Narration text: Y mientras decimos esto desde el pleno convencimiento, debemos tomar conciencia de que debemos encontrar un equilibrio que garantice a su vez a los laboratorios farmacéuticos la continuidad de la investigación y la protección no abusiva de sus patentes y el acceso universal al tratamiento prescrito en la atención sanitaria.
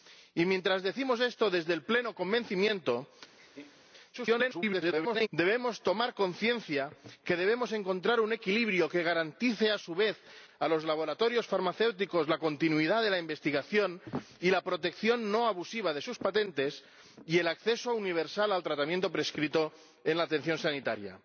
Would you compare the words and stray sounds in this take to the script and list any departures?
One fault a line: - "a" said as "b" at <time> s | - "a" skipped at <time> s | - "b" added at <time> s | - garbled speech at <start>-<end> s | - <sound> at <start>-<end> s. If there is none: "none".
- laugh at 3.4-3.9 s
- garbled speech at 4.1-5.3 s